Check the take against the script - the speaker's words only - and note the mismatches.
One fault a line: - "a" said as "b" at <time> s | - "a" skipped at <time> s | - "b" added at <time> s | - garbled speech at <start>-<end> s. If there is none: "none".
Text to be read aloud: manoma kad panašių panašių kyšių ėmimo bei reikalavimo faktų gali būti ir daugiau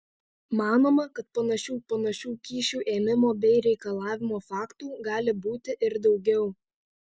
none